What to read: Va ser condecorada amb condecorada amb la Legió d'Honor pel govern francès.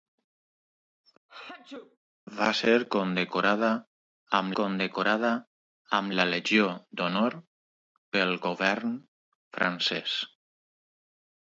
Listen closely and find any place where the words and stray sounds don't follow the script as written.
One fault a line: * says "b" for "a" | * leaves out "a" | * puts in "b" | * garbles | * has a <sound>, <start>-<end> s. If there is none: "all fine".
* has a sneeze, 1.3-2.0 s